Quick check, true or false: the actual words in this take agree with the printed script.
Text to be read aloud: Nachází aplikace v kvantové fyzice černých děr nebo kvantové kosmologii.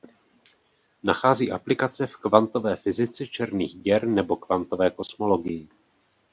true